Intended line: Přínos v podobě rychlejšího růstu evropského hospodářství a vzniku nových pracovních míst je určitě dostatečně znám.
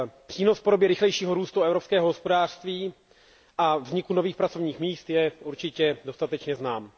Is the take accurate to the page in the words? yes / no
yes